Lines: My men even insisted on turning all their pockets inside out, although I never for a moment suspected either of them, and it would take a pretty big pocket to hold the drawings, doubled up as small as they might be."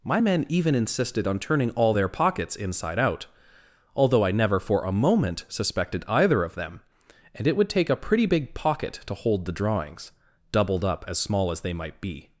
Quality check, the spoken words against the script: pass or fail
pass